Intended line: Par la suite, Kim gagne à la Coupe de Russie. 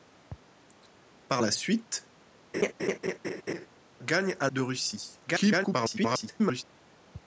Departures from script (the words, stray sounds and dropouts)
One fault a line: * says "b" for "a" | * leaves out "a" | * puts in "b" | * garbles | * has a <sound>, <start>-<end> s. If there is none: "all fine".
* leaves out "Kim"
* has a laugh, 2.5-3.7 s
* leaves out "la Coupe"
* garbles